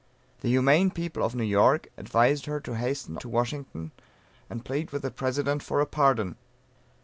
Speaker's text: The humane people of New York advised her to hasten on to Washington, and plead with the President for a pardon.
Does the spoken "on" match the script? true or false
false